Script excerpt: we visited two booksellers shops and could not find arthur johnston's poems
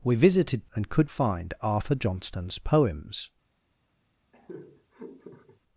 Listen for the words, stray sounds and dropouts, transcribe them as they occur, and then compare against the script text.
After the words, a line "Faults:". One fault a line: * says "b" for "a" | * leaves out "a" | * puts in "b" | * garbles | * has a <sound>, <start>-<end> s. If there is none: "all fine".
we visited and could find arthur johnston's poems
Faults:
* leaves out "two booksellers shops"
* leaves out "not"
* has a laugh, 4.3-5.6 s